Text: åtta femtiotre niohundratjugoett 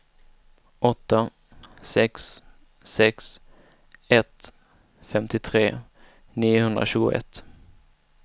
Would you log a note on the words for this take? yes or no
yes